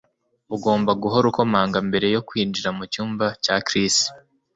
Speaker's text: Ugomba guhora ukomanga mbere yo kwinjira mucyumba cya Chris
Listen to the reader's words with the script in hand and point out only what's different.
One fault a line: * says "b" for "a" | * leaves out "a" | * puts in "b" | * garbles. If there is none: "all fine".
all fine